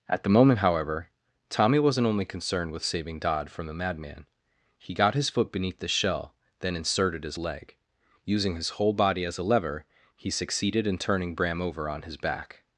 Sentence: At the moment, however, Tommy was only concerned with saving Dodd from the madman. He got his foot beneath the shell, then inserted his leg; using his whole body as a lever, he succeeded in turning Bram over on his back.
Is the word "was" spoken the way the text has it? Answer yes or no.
no